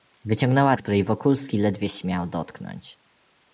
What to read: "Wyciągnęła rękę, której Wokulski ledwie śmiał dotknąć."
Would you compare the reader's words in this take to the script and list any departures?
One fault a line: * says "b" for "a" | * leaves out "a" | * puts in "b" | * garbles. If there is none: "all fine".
* leaves out "rękę"